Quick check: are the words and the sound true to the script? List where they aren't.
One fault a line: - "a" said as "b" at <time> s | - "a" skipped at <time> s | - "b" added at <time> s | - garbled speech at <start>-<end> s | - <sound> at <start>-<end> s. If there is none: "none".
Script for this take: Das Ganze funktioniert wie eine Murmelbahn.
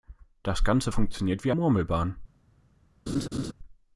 - "eine" skipped at 1.5 s
- laugh at 3.1-3.5 s